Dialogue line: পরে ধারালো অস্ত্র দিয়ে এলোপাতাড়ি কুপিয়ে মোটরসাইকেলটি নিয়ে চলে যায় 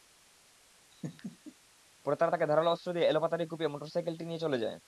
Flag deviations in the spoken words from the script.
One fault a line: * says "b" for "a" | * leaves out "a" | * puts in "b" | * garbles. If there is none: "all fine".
* puts in "তারা তাঁকে"